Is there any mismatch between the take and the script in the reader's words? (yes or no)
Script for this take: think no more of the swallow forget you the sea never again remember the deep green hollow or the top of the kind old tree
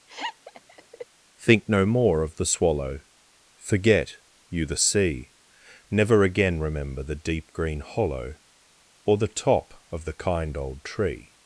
no